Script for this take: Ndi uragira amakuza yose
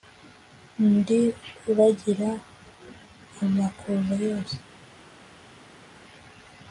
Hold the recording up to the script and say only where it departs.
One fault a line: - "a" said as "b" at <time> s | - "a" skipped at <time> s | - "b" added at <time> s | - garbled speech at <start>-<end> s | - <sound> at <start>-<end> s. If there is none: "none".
none